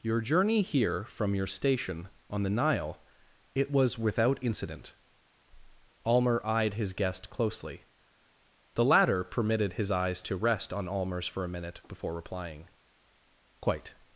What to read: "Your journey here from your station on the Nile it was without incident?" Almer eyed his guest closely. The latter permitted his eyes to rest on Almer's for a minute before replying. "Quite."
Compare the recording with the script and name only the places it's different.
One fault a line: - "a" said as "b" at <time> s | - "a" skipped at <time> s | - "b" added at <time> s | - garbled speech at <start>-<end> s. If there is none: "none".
none